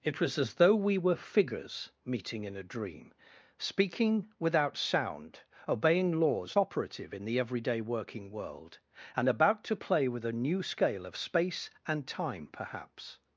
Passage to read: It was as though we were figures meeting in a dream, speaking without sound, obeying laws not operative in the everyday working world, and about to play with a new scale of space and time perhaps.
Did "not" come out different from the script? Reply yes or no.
yes